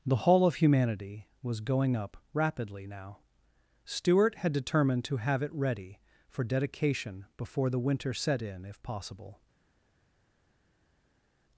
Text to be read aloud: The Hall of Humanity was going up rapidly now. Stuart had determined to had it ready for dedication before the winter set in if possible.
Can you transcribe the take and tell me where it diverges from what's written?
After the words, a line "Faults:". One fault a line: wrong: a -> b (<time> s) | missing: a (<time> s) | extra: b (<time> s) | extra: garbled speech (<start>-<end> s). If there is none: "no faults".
The Hall of Humanity was going up rapidly now. Stuart had determined to have it ready for dedication before the winter set in if possible.
Faults:
wrong: had -> have (5.2 s)